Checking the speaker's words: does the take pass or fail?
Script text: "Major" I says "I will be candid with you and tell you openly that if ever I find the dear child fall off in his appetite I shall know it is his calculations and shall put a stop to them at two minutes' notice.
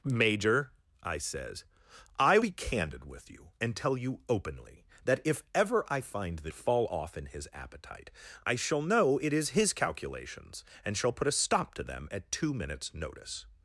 fail